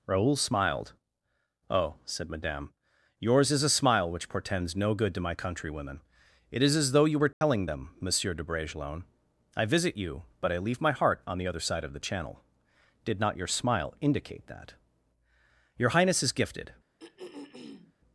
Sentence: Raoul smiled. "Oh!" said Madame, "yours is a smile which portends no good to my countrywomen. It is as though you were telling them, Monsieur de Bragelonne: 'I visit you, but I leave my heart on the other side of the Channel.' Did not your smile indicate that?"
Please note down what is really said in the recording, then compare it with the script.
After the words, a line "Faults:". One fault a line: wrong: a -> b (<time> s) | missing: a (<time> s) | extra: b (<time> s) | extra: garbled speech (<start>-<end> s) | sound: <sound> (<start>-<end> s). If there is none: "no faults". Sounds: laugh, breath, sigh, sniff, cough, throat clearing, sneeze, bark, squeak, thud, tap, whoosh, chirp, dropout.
Raoul smiled. "Oh!" said Madame, "yours is a smile which portends no good to my countrywomen. It is as though you were telling them, Monsieur de Bragelonne: 'I visit you, but I leave my heart on the other side of the Channel.' Did not your smile indicate that?" "Your highness is gifted
Faults:
sound: dropout (7.3-7.4 s)
extra: Your highness is gifted (15.8 s)
sound: throat clearing (17.0-17.9 s)